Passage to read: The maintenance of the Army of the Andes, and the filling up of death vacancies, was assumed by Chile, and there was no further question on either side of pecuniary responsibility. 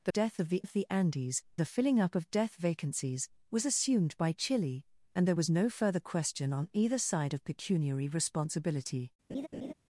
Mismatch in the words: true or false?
true